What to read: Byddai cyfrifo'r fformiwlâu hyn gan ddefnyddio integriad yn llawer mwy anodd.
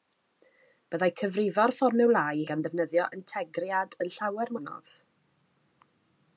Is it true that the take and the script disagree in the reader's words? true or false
true